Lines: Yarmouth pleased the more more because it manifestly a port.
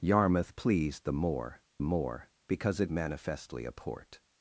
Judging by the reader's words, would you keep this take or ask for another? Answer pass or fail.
pass